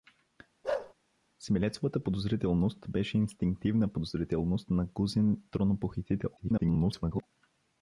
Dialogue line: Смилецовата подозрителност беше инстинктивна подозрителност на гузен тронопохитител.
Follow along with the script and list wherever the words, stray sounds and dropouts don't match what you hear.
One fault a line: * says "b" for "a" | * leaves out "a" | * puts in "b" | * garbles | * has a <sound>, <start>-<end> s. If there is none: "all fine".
* has a bark, 0.6-0.9 s
* garbles